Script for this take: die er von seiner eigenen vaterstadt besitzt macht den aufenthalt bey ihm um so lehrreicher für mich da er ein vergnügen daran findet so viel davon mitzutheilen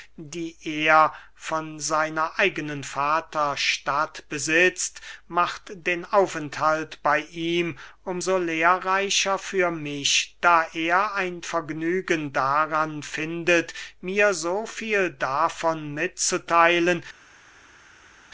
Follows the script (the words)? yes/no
no